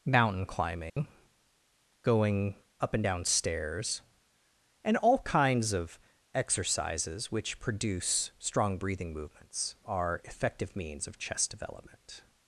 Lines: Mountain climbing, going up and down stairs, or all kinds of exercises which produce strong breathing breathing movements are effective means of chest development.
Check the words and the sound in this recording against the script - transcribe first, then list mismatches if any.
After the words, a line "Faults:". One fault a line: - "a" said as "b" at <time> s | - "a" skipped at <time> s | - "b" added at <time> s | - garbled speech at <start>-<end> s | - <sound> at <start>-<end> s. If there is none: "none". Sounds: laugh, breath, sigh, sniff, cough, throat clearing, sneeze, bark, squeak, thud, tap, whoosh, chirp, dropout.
Mountain climbing, going up and down stairs, and all kinds of exercises which produce strong breathing movements are effective means of chest development.
Faults:
- dropout at 0.9-1.0 s
- "or" said as "and" at 4.8 s
- "breathing" skipped at 9.1 s